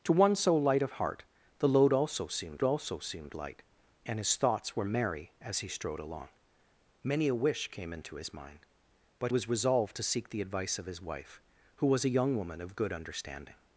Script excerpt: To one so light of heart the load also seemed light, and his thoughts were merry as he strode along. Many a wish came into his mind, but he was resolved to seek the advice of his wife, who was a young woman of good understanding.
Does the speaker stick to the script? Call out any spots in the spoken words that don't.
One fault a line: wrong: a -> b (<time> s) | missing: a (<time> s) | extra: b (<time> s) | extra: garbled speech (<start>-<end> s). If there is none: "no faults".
extra: also seemed (2.6 s)
missing: he (9.3 s)